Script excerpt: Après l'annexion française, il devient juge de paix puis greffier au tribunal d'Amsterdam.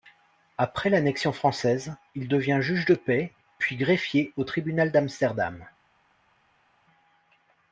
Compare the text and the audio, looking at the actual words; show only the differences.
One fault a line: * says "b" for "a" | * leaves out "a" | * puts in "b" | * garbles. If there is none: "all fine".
all fine